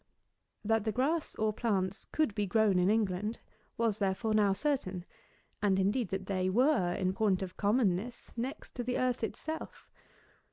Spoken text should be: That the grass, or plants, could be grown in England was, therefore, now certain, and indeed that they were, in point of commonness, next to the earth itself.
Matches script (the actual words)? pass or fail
pass